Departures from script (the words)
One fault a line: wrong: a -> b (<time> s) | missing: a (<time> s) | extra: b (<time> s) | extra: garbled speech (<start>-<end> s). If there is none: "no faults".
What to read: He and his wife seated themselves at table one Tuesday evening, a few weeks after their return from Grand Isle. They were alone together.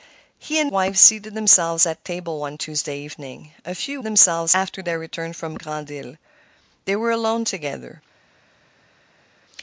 missing: his (0.7 s)
wrong: weeks -> themselves (4.0 s)